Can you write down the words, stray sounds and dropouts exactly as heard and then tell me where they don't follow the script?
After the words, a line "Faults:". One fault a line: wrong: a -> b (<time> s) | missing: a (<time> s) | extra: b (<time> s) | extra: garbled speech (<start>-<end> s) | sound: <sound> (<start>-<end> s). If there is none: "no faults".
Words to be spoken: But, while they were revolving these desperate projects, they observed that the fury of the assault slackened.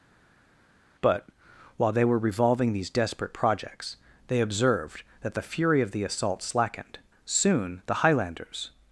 But, while they were revolving these desperate projects, they observed that the fury of the assault slackened. Soon the highlanders
Faults:
extra: Soon the highlanders (7.2 s)